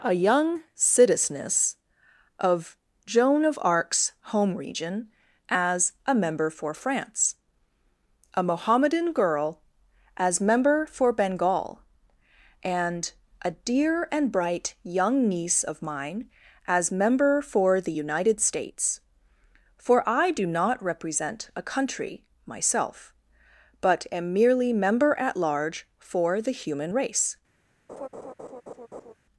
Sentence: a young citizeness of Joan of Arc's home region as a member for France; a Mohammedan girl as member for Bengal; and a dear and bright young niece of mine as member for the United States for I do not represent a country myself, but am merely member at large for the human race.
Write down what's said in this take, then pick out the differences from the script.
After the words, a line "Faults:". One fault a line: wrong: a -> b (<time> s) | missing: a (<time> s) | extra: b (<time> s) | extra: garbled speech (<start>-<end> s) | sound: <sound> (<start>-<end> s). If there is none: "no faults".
a young citizeness of Joan of Arc's home region as a member for France; a Mohammedan girl as member for Bengal; and a dear and bright young niece of mine as member for the United States for I do not represent a country myself, but am merely member at large for the human race.
Faults:
sound: laugh (27.9-29.1 s)